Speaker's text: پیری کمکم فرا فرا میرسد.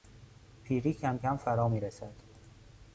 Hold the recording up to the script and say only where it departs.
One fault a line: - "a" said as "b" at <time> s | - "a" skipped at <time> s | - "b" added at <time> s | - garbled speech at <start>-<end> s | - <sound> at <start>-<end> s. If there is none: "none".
- "فرا" skipped at 1.7 s